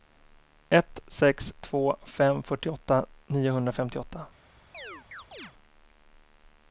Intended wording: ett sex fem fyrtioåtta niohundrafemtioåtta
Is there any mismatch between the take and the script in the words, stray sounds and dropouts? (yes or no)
yes